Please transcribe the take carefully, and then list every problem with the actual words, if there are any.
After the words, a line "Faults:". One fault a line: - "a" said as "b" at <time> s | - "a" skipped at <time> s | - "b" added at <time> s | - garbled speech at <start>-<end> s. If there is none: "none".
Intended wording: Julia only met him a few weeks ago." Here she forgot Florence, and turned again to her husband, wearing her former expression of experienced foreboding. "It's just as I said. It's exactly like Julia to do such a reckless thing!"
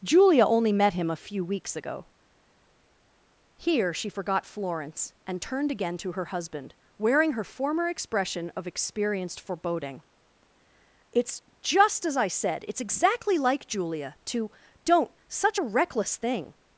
Julia only met him a few weeks ago." Here she forgot Florence, and turned again to her husband, wearing her former expression of experienced foreboding. "It's just as I said. It's exactly like Julia to don't such a reckless thing!"
Faults:
- "do" said as "don't" at 14.8 s